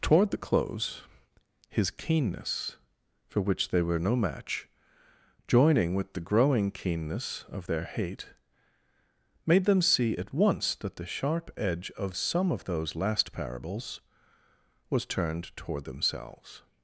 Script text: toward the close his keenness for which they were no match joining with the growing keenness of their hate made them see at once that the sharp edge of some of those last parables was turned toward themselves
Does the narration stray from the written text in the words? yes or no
no